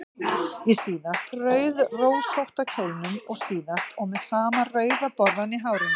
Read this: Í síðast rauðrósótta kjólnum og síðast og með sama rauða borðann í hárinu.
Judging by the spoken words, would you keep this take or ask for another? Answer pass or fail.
pass